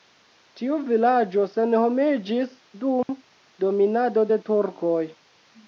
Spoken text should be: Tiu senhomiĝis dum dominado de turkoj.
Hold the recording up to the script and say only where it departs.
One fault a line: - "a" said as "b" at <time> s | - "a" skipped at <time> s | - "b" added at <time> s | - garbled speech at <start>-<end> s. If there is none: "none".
- "vilaĝo" added at 0.9 s